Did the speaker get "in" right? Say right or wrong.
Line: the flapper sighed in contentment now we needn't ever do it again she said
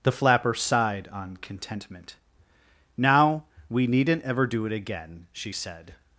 wrong